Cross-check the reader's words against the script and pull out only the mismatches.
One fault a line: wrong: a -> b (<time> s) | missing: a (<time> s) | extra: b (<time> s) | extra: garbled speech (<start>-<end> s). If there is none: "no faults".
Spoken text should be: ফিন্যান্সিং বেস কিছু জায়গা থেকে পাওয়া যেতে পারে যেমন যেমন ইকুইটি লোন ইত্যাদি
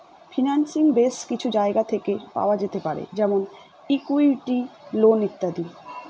missing: যেমন (3.4 s)